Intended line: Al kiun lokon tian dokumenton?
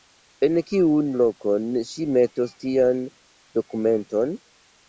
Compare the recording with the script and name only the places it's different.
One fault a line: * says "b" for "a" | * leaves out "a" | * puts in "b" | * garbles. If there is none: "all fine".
* says "En" for "Al"
* puts in "ŝi metos"